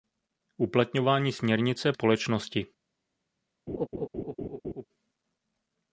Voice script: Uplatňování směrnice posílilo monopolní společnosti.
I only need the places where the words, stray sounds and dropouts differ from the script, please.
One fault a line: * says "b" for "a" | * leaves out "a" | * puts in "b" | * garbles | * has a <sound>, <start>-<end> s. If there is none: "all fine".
* leaves out "posílilo monopolní"
* has a laugh, 3.7-4.9 s